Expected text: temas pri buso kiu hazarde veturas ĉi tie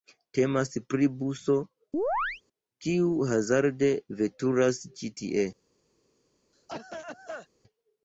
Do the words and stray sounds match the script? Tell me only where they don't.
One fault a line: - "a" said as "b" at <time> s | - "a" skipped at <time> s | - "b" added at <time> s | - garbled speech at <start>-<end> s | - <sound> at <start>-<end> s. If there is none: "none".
- chirp at 1.9-2.4 s
- cough at 6.5-7.5 s